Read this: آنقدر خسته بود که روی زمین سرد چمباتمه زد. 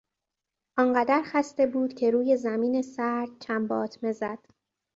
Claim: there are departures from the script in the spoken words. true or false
false